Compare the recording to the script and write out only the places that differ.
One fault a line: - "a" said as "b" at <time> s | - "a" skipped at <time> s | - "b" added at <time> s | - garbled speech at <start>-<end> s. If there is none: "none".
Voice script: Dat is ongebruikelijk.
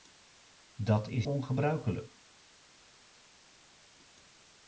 none